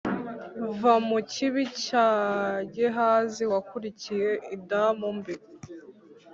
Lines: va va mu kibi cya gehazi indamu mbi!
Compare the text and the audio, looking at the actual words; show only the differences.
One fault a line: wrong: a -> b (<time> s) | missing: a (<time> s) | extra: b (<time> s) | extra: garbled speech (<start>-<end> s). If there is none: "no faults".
missing: va (0.9 s)
extra: wakurikiye (3.5 s)